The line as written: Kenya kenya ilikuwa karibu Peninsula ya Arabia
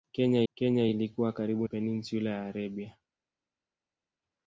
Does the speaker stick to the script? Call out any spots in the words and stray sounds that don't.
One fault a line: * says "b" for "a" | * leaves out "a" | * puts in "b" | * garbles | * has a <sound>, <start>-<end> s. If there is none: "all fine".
all fine